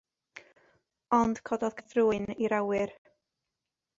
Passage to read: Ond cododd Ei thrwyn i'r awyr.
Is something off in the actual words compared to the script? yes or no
no